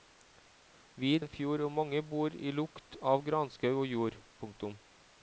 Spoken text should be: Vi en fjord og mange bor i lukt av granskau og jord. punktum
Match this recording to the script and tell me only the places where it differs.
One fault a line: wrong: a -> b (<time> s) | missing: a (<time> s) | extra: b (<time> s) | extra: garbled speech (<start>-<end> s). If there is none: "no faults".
no faults